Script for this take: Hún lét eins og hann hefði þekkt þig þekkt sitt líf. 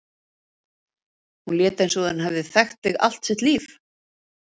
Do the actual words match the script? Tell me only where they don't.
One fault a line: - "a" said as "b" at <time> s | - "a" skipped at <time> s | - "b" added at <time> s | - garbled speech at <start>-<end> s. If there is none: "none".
- "hann" said as "hún" at 2.1 s
- "þekkt" said as "allt" at 3.1 s